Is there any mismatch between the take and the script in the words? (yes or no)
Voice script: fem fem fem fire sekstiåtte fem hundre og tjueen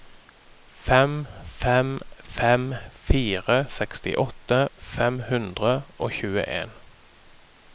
no